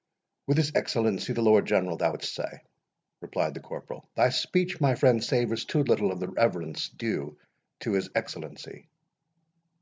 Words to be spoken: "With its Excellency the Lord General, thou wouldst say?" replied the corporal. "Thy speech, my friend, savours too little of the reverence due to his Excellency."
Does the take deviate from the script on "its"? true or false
true